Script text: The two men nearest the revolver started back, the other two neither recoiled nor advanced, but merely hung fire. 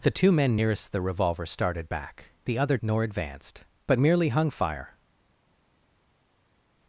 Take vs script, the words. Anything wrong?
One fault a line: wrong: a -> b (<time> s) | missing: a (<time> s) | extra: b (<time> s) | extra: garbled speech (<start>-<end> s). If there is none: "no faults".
missing: two neither recoiled (2.8 s)